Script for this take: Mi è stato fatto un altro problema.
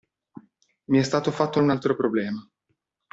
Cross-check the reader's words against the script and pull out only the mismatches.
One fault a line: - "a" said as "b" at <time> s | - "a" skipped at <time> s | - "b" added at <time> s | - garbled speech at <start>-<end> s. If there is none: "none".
none